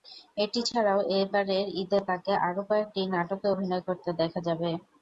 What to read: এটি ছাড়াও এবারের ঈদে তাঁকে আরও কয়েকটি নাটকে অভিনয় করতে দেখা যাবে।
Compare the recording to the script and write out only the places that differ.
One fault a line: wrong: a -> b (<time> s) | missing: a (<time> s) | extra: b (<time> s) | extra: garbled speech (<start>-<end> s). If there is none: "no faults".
no faults